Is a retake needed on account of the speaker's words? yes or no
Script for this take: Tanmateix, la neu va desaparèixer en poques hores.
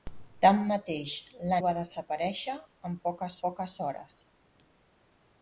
yes